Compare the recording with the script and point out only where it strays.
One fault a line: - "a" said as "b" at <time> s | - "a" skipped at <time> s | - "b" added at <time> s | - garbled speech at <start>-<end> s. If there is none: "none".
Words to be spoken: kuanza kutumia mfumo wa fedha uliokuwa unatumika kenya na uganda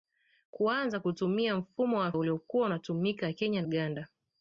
- "fedha" skipped at 2.1 s
- "na" skipped at 3.6 s